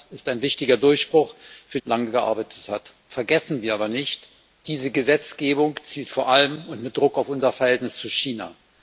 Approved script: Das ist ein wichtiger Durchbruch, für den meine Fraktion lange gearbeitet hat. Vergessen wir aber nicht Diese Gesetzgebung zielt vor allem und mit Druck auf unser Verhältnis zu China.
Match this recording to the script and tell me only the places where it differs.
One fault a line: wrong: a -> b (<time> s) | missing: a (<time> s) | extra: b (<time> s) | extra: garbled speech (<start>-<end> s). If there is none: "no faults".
missing: den meine Fraktion (1.8 s)